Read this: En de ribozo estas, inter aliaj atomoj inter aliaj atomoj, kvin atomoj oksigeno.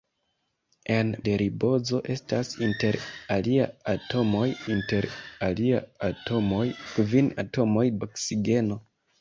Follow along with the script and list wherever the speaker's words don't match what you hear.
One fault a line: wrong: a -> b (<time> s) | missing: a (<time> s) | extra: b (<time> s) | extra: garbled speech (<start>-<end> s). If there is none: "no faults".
no faults